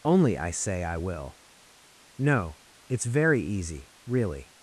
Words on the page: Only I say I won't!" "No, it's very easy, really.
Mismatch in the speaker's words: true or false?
true